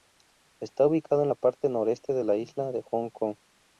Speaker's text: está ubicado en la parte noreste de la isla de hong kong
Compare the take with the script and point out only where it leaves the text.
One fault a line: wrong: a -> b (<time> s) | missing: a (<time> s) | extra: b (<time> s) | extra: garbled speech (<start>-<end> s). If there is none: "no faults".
no faults